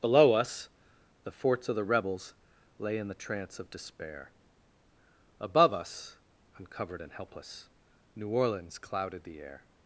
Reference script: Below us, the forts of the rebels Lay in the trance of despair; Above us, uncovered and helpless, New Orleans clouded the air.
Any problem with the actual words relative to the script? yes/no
no